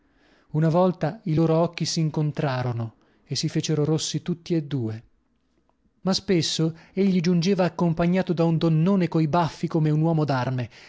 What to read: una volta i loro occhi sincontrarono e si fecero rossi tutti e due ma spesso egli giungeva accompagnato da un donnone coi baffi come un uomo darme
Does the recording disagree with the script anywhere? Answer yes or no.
no